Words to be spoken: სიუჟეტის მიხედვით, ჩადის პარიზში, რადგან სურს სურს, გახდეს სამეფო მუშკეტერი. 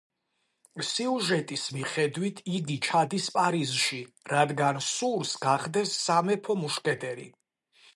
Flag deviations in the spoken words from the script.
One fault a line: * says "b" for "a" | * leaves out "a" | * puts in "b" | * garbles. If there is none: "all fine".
* puts in "იგი"
* leaves out "სურს"